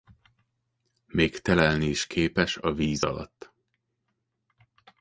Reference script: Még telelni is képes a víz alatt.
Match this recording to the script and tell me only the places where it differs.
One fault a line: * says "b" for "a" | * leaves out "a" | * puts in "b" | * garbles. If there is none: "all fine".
all fine